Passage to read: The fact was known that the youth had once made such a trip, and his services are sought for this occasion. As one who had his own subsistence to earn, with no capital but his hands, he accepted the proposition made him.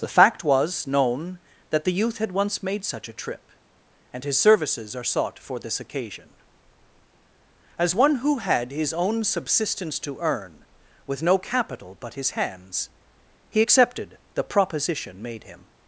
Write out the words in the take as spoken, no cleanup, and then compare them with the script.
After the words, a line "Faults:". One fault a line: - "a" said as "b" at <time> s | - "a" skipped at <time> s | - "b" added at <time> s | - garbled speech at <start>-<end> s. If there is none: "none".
The fact was known that the youth had once made such a trip, and his services are sought for this occasion. As one who had his own subsistence to earn, with no capital but his hands, he accepted the proposition made him.
Faults:
none